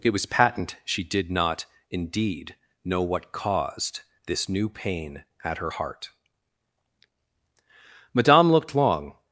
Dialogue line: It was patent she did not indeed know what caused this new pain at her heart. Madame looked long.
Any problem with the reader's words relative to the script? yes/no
no